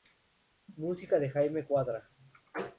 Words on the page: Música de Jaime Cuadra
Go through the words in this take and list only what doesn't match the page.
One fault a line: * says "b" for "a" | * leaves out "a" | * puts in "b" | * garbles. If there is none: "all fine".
all fine